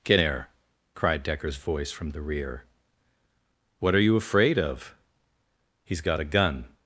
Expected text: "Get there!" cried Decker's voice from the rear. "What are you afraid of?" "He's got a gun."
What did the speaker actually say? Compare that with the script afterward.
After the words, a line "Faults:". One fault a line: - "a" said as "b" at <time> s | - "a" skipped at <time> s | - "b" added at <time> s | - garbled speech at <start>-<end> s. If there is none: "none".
"Get there!" cried Decker's voice from the rear. "What are you afraid of?" "He's got a gun."
Faults:
none